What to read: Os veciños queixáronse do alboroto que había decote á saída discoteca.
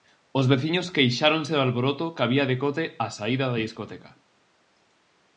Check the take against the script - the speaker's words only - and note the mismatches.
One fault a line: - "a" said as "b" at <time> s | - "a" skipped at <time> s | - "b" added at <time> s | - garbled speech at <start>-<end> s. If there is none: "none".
- "da" added at 3.5 s